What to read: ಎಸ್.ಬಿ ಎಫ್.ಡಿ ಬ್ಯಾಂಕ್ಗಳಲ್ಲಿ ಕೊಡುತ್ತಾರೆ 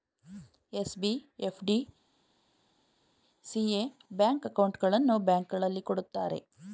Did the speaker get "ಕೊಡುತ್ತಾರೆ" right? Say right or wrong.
right